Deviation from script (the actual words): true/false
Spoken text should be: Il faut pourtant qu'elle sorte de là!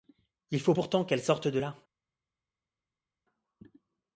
false